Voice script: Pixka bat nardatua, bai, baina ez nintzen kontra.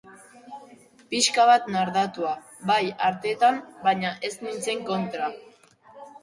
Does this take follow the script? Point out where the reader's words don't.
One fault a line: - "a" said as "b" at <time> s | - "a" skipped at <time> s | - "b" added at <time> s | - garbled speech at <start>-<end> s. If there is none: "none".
- "artetan" added at 3.1 s